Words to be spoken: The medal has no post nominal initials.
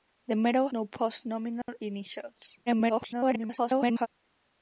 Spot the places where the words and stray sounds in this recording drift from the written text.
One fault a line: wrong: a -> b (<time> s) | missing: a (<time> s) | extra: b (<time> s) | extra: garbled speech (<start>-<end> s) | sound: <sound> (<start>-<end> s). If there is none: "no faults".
missing: has (0.7 s)
sound: dropout (1.6-1.7 s)
extra: garbled speech (2.7-4.1 s)